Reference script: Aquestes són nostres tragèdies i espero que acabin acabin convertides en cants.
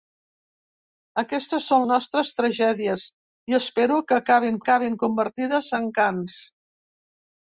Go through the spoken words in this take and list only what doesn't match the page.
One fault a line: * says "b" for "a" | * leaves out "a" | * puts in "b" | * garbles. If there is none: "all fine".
all fine